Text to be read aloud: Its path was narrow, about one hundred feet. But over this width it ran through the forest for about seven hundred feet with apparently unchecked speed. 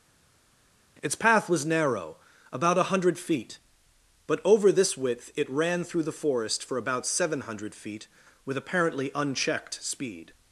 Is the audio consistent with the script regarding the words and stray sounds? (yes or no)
no